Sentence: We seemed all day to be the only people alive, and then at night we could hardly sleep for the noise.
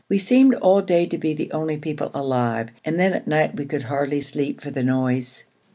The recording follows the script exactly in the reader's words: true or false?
true